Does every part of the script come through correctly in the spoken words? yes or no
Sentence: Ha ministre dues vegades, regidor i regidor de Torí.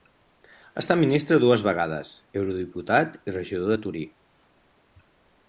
no